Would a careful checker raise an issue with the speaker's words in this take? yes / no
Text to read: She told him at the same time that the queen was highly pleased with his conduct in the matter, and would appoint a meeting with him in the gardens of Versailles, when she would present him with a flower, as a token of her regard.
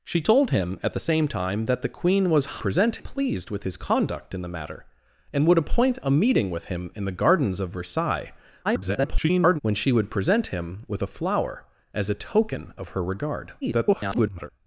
yes